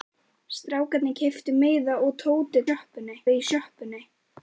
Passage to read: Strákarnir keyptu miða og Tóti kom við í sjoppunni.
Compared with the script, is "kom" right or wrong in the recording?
wrong